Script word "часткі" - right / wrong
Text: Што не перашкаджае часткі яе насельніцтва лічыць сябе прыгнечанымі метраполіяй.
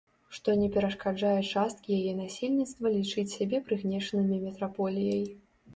right